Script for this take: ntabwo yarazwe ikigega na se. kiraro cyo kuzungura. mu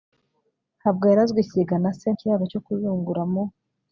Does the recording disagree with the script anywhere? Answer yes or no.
no